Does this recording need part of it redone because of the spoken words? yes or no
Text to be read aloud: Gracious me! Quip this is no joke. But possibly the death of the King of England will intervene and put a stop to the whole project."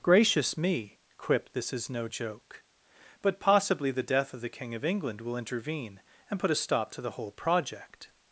no